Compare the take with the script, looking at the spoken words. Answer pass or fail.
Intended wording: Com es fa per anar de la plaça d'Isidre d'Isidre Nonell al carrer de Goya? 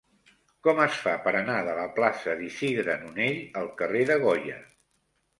fail